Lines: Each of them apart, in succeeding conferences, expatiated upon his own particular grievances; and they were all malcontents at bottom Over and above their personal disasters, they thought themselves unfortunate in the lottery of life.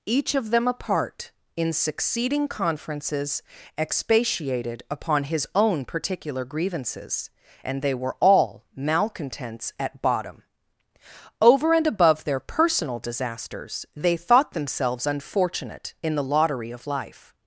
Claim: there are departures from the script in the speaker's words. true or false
false